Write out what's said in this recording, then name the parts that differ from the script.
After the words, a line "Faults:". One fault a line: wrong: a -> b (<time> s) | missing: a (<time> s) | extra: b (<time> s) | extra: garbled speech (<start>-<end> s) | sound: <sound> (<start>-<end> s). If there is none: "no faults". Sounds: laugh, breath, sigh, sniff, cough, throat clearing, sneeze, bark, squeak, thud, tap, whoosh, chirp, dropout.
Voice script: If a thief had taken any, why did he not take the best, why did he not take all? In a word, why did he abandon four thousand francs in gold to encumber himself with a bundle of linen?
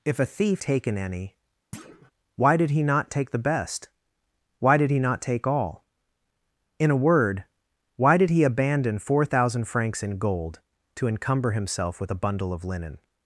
If a thief taken any, why did he not take the best, why did he not take all? In a word, why did he abandon four thousand francs in gold to encumber himself with a bundle of linen?
Faults:
missing: had (0.6 s)
sound: thud (1.7-2.1 s)